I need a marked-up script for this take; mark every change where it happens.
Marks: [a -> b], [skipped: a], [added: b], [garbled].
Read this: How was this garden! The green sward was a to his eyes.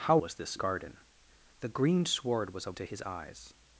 How was this garden! The green sward was a to his eyes.